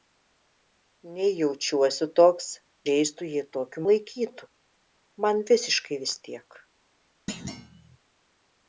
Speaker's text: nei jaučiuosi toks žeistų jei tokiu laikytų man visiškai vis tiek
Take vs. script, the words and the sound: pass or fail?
fail